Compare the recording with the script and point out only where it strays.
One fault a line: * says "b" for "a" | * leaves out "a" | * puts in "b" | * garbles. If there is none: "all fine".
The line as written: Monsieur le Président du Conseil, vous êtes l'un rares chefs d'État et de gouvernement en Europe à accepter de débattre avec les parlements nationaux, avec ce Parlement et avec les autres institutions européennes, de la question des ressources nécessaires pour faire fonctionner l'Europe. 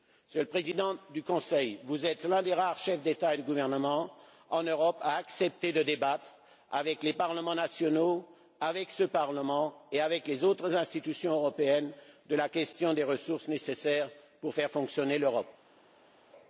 * puts in "des"